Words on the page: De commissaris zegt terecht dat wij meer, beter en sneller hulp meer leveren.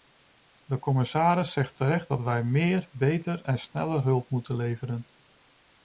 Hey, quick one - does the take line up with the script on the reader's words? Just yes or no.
no